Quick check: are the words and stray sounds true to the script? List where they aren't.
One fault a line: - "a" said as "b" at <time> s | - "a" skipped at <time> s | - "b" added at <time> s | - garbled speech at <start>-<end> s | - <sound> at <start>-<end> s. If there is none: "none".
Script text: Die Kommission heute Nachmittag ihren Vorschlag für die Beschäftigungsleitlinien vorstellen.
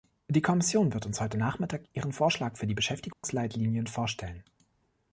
- "wird uns" added at 0.9 s
- dropout at 3.1-3.2 s